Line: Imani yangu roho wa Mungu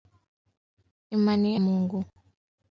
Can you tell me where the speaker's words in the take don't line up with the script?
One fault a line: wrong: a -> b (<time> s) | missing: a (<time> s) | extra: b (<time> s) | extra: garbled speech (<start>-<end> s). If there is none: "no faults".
missing: yangu roho wa (1.6 s)